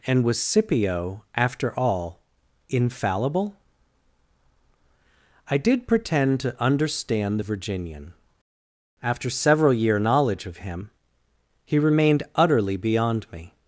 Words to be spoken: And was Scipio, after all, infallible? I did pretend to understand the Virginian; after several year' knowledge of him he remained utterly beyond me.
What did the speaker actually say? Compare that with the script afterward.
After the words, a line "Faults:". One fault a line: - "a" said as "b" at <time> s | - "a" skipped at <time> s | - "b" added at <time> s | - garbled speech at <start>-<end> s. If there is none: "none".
And was Scipio, after all, infallible? I did pretend to understand the Virginian; after several year' knowledge of him he remained utterly beyond me.
Faults:
none